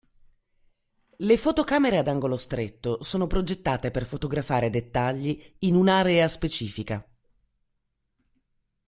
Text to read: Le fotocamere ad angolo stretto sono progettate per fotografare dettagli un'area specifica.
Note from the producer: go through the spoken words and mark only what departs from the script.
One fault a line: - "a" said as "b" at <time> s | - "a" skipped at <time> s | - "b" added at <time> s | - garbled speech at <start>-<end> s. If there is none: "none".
- "in" added at 5.6 s